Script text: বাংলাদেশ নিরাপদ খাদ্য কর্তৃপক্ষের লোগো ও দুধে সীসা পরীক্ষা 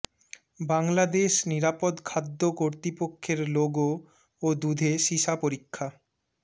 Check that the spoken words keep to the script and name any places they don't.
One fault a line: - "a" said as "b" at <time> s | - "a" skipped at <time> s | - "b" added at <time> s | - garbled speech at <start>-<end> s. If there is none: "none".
none